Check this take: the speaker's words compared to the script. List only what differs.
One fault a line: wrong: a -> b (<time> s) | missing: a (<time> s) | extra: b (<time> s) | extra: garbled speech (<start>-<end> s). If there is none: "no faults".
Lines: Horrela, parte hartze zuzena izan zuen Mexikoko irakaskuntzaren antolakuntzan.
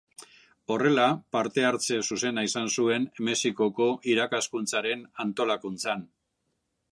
no faults